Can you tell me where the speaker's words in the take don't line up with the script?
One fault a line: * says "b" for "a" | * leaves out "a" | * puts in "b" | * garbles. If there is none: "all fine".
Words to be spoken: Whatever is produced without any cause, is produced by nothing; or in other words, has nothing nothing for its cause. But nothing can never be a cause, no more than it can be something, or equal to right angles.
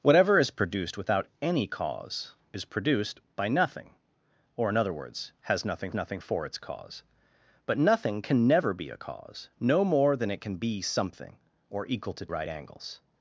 all fine